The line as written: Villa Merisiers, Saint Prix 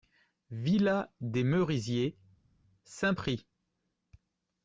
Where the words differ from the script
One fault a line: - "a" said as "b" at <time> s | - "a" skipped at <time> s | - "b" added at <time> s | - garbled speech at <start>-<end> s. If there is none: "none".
- "des" added at 1.2 s